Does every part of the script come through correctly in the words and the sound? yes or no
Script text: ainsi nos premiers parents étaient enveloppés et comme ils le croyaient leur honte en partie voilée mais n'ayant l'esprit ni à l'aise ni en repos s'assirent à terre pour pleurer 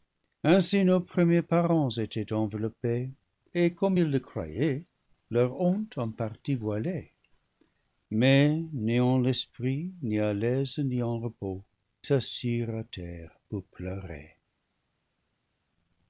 yes